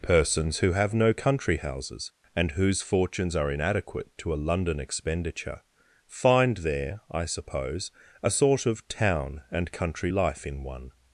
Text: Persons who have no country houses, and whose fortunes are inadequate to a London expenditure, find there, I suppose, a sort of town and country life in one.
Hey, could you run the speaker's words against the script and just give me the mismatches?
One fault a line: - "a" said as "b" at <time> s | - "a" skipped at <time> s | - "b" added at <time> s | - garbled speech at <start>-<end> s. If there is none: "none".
none